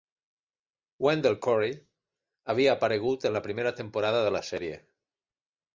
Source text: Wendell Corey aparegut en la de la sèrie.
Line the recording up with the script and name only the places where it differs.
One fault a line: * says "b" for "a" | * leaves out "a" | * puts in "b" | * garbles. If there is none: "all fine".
* puts in "havia"
* puts in "primera temporada"